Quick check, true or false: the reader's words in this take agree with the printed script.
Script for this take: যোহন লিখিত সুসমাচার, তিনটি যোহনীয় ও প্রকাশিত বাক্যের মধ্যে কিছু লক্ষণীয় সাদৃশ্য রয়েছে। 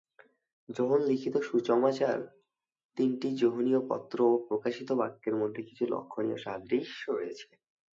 false